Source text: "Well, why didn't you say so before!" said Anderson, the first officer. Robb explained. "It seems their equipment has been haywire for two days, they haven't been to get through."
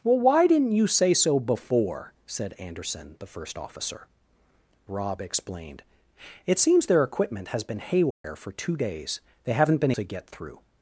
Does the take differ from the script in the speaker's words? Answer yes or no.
no